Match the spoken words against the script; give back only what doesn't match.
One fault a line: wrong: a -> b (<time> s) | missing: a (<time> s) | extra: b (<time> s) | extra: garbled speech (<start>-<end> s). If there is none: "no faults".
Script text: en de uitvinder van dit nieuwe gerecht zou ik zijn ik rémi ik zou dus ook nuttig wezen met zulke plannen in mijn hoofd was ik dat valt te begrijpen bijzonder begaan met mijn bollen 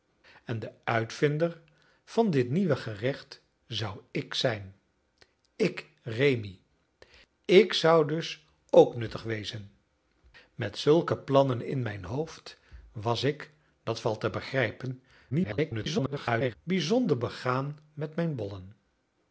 extra: garbled speech (15.3-16.6 s)